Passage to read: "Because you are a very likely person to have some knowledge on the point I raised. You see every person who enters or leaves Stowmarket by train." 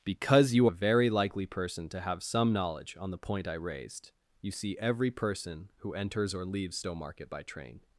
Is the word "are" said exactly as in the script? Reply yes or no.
no